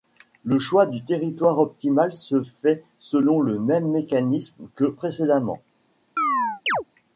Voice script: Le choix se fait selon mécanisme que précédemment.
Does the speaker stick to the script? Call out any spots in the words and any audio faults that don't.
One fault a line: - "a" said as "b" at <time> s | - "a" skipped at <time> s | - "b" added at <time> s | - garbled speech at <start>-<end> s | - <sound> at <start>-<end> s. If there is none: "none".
- "du territoire optimal" added at 0.9 s
- "le même" added at 3.4 s
- chirp at 6.2-6.8 s